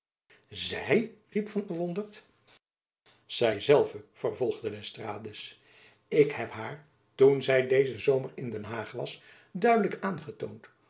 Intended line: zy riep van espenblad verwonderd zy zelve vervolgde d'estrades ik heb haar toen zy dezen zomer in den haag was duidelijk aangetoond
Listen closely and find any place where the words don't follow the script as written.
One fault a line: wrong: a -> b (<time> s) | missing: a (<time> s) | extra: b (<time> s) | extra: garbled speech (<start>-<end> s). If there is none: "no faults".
missing: espenblad (1.7 s)